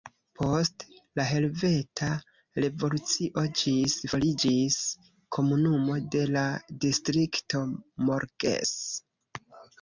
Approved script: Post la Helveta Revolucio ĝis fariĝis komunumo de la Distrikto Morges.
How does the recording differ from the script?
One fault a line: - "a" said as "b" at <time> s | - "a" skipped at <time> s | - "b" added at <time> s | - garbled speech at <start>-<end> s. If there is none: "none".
none